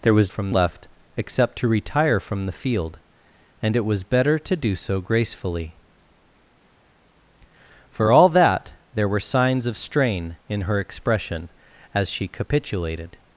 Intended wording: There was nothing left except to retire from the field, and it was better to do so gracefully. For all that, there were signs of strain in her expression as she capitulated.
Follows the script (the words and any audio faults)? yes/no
no